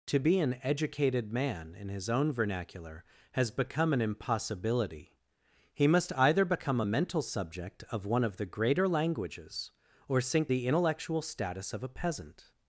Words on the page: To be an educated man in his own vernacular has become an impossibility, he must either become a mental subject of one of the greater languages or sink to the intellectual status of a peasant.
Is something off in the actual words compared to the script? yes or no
yes